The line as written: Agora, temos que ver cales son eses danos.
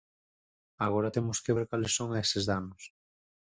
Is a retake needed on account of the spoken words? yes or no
no